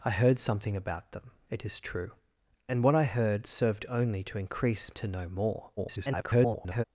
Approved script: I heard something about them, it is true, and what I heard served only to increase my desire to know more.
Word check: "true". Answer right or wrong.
right